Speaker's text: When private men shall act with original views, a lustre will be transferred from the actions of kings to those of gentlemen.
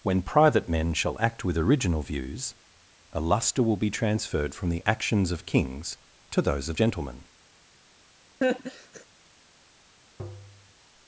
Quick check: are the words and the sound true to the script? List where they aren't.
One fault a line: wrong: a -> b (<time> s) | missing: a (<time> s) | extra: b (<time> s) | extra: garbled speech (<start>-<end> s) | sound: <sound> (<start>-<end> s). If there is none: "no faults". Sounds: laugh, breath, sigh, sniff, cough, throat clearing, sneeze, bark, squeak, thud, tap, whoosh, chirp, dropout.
sound: laugh (8.4-9.1 s)
sound: tap (10.2-10.7 s)